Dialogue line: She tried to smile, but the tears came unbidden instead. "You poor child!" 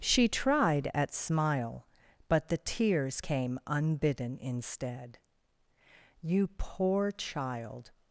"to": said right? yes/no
no